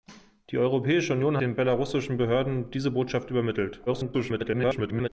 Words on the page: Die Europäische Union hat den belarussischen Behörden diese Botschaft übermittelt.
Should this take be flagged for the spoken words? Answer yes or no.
yes